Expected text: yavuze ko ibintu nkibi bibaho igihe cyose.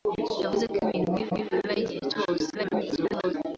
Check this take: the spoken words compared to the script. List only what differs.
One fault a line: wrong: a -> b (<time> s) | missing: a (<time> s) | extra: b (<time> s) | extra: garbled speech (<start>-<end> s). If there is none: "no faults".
extra: nkibi (1.3 s)
extra: garbled speech (2.5-3.3 s)